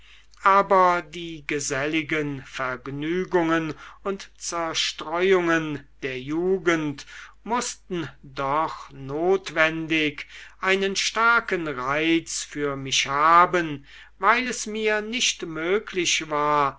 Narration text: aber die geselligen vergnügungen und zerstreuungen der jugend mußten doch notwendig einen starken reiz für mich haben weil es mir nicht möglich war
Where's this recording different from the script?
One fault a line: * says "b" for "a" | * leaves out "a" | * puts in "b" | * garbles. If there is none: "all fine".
all fine